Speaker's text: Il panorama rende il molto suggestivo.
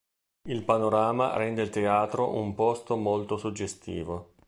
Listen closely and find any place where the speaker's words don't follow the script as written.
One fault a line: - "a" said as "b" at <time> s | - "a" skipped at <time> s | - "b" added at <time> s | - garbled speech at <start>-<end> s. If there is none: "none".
- "teatro un posto" added at 1.7 s